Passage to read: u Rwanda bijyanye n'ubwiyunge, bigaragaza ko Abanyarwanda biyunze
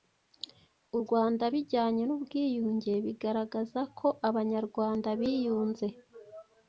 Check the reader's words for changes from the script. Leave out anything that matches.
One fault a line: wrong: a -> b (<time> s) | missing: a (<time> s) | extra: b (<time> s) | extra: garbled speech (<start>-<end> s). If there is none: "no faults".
no faults